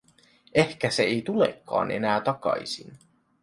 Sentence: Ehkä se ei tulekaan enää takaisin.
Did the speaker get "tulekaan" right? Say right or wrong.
right